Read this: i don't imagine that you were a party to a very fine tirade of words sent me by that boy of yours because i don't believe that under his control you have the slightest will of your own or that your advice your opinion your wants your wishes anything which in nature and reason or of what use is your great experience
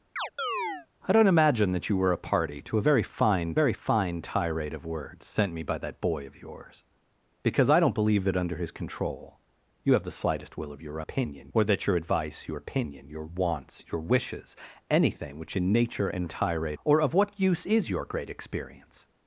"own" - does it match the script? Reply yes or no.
no